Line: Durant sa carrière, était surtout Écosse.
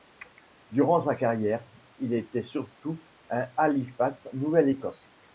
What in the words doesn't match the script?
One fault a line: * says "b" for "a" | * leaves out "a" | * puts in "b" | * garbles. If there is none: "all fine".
* puts in "il"
* puts in "à Halifax Nouvelle"